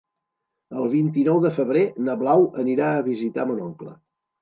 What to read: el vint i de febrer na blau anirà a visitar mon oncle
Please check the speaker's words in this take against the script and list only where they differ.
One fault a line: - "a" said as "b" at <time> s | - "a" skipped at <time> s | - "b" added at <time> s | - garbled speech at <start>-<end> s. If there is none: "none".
- "nou" added at 1.3 s